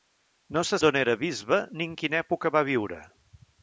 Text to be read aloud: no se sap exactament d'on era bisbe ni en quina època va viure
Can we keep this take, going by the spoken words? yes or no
no